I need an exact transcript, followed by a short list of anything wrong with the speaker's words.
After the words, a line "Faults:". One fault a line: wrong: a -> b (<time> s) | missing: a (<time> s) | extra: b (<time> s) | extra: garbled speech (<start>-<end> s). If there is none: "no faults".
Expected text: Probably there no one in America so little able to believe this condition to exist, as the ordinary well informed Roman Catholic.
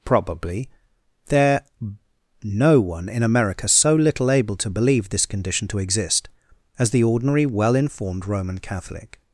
Probably there no one in America so little able to believe this condition to exist, as the ordinary well informed Roman Catholic.
Faults:
no faults